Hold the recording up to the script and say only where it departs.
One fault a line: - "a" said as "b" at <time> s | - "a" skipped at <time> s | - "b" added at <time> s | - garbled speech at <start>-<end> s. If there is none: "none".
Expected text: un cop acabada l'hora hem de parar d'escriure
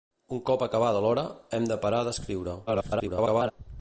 - garbled speech at 2.7-3.5 s